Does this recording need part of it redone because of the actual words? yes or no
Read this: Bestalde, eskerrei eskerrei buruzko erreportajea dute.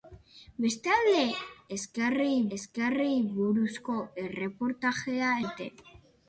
no